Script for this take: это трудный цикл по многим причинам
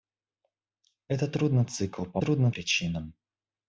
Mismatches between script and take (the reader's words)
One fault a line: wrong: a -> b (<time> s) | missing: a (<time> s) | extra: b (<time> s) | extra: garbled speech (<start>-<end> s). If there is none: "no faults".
wrong: многим -> трудный (2.1 s)